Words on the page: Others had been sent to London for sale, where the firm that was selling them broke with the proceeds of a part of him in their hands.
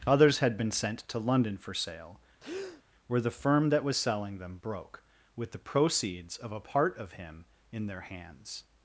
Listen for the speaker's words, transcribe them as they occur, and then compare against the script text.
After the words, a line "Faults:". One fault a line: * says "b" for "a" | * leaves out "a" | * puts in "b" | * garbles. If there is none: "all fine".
Others had been sent to London for sale, where the firm that was selling them broke with the proceeds of a part of him in their hands.
Faults:
all fine